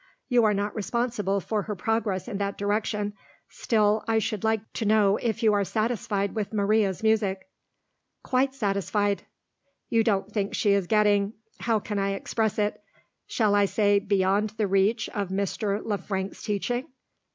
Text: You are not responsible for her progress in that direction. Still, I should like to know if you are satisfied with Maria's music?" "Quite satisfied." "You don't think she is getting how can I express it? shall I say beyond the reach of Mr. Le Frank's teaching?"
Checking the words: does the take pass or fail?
pass